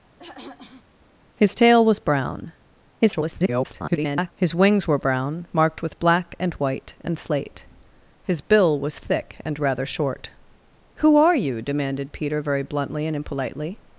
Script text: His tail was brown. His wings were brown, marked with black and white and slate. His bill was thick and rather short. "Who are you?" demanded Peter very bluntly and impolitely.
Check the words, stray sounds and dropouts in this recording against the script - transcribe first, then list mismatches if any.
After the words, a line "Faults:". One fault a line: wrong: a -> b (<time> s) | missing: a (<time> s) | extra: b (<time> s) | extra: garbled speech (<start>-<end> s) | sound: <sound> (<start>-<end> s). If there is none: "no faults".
His tail was brown. [garbled] His wings were brown, marked with black and white and slate. His bill was thick and rather short. "Who are you?" demanded Peter very bluntly and impolitely.
Faults:
sound: throat clearing (0.2-0.9 s)
extra: garbled speech (3.0-4.3 s)